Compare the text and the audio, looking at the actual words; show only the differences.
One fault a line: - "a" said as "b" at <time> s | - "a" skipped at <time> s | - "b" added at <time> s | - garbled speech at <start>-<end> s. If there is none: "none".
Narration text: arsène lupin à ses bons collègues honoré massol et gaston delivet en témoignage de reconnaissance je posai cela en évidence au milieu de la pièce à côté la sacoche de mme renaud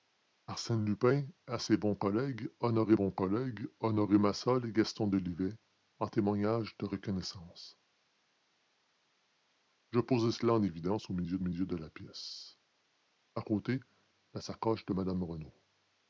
- "bons collègues honoré" added at 2.9 s
- "milieu" added at 11.4 s